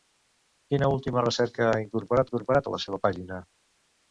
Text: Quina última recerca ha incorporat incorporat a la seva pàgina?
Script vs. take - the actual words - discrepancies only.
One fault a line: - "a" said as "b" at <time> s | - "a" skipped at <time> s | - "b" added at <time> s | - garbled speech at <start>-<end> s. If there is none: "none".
none